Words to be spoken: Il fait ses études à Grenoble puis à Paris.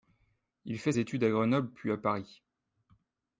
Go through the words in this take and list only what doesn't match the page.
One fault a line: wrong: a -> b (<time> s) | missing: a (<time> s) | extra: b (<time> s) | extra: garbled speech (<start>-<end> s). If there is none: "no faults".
missing: ses (0.9 s)